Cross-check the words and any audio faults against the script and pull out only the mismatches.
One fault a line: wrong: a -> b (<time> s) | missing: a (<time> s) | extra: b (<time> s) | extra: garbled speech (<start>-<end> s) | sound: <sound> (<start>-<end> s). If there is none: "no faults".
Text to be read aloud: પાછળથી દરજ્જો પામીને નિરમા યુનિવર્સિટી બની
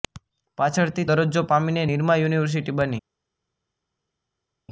no faults